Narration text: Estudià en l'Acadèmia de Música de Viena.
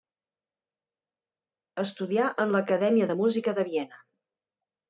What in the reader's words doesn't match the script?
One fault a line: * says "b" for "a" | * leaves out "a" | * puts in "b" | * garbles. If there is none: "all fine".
all fine